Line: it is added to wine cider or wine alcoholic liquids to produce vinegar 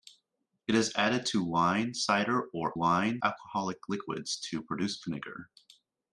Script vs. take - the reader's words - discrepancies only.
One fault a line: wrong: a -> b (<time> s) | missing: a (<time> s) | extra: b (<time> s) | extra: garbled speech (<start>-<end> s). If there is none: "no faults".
no faults